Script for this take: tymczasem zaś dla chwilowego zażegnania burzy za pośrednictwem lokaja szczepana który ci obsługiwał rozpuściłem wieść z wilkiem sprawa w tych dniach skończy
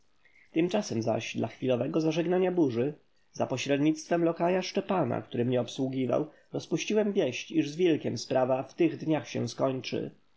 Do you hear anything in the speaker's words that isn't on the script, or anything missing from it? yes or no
yes